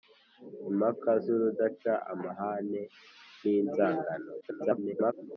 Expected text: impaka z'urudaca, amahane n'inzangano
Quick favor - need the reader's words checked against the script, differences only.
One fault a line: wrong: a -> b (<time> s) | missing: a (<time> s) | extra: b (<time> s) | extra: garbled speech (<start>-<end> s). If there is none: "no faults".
extra: garbled speech (4.4-5.1 s)